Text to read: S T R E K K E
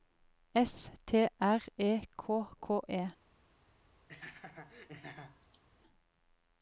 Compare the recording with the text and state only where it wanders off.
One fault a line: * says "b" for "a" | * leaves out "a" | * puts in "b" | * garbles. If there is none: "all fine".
all fine